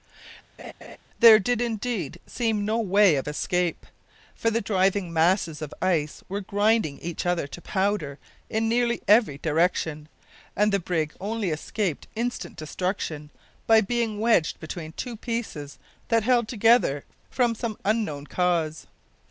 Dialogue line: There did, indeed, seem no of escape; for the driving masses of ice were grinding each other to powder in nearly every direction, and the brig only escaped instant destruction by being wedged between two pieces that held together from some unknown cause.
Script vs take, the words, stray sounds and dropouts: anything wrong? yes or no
yes